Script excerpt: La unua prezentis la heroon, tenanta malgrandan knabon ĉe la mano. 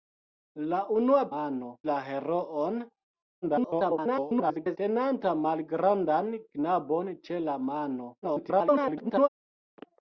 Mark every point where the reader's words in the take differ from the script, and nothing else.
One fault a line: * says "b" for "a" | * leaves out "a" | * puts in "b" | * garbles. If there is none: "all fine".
* says "mano" for "prezentis"
* garbles
* garbles